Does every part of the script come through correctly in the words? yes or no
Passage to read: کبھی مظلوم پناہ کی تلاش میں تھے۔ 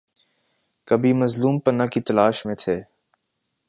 yes